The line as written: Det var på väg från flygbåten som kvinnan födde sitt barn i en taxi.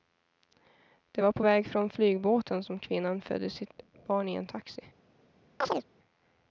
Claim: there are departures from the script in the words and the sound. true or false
true